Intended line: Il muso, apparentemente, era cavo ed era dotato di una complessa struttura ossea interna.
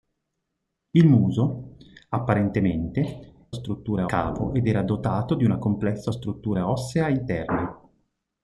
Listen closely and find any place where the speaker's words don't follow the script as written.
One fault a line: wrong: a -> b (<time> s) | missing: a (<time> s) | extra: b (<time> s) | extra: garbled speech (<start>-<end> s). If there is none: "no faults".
wrong: era -> struttura (3.5 s)